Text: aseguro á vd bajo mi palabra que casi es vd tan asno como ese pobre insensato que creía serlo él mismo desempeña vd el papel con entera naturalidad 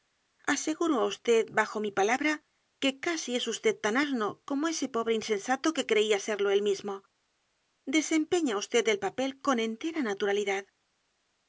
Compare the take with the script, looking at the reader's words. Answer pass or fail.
pass